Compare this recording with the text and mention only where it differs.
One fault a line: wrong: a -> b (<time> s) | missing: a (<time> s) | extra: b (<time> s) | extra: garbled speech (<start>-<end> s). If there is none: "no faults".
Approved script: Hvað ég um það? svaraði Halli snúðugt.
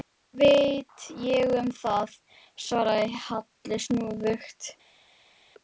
extra: veit (0.4 s)